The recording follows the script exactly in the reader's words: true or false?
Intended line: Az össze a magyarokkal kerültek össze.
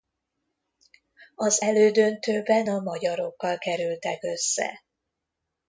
false